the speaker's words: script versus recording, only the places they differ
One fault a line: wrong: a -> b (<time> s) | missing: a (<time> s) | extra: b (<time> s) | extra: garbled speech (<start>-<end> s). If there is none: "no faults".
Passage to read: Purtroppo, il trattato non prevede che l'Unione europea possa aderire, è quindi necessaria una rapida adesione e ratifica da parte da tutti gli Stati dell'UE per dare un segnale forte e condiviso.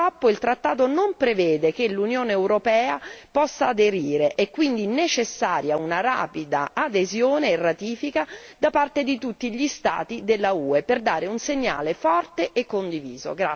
wrong: da -> di (9.0 s)